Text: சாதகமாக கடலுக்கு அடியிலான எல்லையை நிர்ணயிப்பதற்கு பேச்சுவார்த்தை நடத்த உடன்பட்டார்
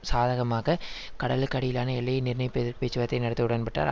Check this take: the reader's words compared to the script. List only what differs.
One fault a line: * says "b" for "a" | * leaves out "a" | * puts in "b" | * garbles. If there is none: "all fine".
all fine